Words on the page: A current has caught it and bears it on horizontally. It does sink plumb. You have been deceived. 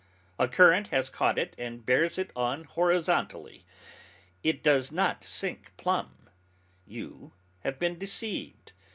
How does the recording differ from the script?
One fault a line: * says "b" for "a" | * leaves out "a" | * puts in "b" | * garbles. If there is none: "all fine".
* puts in "not"